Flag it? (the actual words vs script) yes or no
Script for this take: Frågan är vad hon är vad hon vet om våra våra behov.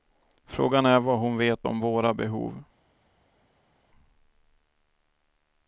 yes